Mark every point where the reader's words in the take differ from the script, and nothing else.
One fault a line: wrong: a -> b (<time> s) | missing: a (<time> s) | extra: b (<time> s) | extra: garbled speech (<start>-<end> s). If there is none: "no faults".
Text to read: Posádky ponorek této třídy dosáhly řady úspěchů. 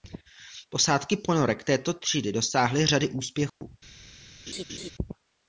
no faults